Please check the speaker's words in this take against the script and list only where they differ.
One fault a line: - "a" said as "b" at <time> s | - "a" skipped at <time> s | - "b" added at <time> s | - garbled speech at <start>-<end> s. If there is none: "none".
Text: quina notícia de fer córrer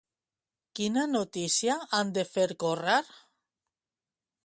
- "han" added at 2.0 s